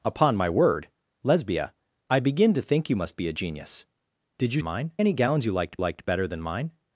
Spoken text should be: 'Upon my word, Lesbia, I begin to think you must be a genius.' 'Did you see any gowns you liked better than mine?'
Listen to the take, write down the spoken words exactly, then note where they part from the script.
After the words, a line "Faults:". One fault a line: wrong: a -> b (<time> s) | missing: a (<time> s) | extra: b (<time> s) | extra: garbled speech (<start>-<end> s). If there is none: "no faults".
'Upon my word, Lesbia, I begin to think you must be a genius.' 'Did you mine any gowns you liked liked better than mine?'
Faults:
wrong: see -> mine (4.6 s)
extra: liked (5.8 s)